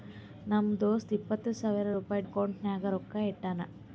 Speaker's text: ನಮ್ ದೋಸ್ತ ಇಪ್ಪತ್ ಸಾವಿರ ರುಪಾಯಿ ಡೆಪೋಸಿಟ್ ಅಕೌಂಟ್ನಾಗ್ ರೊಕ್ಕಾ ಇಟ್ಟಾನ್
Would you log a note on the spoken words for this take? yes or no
yes